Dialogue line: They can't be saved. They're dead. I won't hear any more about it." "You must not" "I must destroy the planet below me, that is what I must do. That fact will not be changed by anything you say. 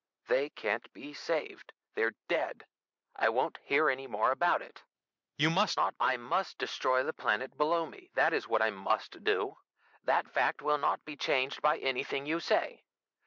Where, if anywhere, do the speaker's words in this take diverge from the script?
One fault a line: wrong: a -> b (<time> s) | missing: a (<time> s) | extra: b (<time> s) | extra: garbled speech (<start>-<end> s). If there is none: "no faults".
no faults